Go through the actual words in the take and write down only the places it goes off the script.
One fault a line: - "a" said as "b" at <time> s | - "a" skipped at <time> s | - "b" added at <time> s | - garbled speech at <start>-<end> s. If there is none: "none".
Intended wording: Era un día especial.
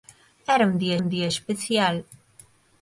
- "un día" added at 1.0 s